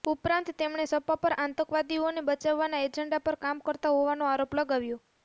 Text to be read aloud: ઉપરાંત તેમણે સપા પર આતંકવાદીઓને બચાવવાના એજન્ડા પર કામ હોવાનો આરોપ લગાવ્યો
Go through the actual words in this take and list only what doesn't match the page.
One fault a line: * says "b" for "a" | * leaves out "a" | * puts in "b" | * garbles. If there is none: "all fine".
* puts in "કરતા"